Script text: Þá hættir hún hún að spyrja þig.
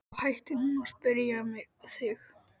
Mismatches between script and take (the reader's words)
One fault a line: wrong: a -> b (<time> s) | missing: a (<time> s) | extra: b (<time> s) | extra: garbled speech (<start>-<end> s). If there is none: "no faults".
missing: hún (0.8 s)